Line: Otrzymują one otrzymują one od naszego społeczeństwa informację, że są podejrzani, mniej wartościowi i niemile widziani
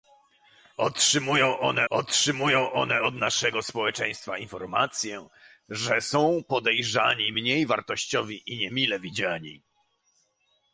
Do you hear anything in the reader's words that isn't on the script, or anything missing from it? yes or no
no